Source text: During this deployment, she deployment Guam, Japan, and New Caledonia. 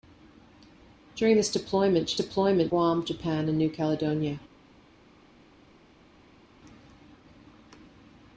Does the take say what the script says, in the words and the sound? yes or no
yes